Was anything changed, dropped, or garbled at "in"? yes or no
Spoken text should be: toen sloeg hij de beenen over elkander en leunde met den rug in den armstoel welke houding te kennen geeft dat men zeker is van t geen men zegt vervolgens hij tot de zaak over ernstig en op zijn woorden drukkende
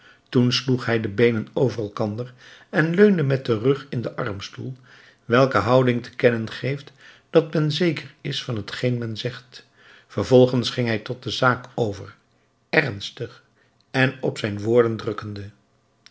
no